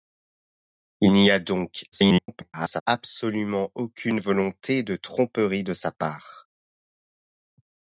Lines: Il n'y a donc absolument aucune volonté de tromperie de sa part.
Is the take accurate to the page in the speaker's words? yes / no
no